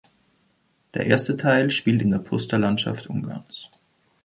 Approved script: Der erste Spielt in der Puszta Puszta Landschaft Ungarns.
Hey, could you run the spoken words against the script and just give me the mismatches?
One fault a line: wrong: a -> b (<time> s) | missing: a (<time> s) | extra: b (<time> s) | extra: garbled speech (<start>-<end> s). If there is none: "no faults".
extra: Teil (1.4 s)
missing: Puszta (2.6 s)